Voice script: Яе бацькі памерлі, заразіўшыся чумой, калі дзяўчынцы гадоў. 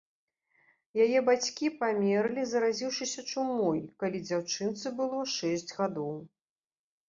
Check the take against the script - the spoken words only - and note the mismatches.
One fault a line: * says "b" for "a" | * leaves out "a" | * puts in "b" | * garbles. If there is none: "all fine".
* puts in "было шэсць"